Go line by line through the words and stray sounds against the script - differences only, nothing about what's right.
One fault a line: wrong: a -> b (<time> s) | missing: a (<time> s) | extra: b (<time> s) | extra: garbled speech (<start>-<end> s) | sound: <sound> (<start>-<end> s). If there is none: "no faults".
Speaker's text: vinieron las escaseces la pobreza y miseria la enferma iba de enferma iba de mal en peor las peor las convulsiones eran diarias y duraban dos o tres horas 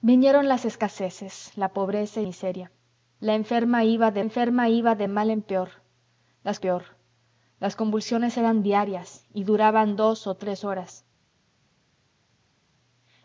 no faults